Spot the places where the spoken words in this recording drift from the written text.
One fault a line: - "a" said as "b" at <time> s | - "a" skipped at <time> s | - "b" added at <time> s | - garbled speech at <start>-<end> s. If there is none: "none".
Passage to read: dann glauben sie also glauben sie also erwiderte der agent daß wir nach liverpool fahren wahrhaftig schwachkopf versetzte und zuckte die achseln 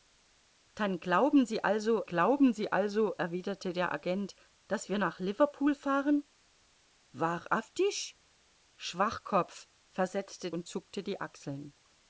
none